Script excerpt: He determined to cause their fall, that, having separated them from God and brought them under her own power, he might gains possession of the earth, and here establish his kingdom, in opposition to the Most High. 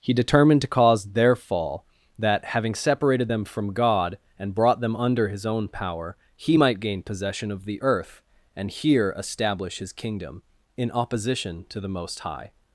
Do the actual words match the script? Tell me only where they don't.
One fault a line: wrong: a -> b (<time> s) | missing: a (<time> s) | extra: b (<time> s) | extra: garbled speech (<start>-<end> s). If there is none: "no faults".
wrong: her -> his (5.3 s)
wrong: gains -> gain (6.8 s)